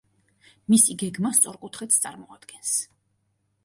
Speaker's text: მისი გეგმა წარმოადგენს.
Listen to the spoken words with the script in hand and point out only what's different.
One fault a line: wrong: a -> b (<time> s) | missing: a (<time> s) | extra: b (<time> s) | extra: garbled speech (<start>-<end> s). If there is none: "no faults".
extra: სწორკუთხედს (1.4 s)